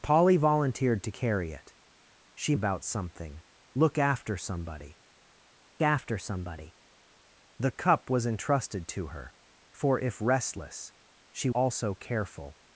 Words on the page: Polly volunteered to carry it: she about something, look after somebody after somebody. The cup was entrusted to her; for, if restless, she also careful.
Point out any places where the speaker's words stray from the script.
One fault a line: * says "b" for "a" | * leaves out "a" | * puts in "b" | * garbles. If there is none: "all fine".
all fine